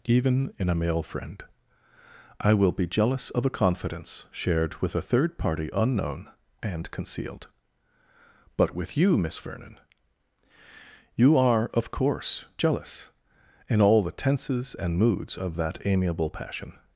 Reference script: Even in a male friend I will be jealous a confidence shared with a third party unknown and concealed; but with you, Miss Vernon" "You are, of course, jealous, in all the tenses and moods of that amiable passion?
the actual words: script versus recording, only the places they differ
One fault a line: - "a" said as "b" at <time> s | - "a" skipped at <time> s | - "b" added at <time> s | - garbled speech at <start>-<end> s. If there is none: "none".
- "of" added at 3.3 s